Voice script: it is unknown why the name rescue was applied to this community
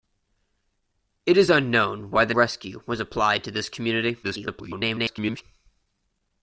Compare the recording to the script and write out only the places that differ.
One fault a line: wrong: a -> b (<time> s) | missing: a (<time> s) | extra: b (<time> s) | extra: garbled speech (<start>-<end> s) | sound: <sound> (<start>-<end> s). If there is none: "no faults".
missing: name (2.3 s)
extra: garbled speech (4.2-5.4 s)